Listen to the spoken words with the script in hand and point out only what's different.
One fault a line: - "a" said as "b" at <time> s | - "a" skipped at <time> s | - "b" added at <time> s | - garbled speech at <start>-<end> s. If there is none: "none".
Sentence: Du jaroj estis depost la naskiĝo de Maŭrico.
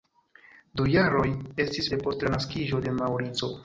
none